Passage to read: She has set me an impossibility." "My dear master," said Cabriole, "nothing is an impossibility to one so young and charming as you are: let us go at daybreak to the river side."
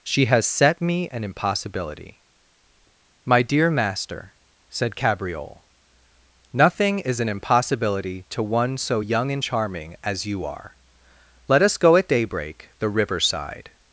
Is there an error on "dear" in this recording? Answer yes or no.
no